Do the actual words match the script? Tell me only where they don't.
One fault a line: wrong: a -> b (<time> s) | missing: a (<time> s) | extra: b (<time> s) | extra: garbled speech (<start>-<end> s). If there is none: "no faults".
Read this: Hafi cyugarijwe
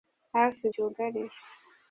no faults